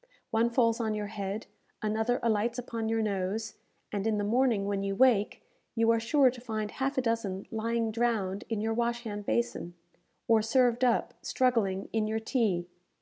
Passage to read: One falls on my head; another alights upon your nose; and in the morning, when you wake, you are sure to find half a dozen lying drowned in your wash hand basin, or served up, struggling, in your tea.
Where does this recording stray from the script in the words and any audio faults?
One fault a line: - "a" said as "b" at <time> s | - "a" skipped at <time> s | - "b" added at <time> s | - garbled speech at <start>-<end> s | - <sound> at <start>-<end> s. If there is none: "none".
- "my" said as "your" at 0.9 s